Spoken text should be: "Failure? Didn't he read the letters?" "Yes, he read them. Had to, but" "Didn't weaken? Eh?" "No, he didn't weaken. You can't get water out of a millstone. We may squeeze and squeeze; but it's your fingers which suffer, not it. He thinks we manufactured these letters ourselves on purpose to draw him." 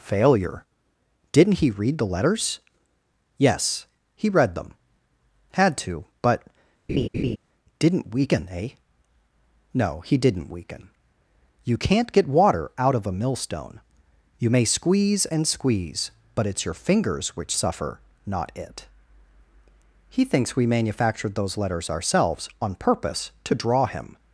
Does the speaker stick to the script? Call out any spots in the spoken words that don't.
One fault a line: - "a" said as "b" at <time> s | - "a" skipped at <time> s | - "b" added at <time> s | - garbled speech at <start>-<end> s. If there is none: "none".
- "We" said as "You" at 14.4 s
- "these" said as "those" at 21.3 s